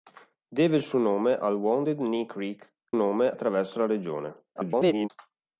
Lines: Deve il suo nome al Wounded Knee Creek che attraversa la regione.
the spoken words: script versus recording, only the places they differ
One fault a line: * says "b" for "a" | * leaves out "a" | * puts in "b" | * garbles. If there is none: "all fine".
* says "nome" for "che"
* garbles